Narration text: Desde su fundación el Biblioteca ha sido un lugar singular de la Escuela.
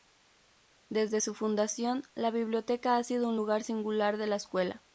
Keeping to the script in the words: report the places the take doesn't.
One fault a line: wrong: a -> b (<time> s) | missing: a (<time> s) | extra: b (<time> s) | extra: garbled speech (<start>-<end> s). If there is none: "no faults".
wrong: el -> la (2.1 s)